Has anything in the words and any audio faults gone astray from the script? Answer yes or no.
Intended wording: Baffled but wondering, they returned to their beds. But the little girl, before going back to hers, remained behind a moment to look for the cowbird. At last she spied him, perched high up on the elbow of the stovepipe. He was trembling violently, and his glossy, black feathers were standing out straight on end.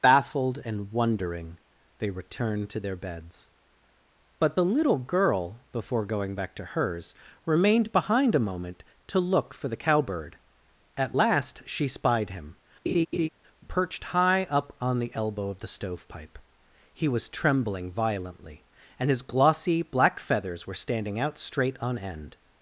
yes